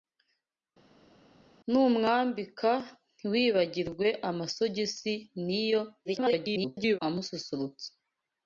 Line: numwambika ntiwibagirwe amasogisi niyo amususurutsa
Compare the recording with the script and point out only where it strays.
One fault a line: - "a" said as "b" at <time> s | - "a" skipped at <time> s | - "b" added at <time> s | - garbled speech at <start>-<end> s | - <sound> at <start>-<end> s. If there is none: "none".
- garbled speech at 6.0-7.0 s